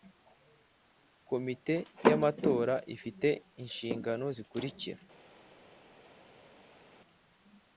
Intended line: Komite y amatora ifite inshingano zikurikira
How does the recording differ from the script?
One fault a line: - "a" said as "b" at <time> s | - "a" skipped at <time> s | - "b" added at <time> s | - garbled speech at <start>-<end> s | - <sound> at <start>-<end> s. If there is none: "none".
none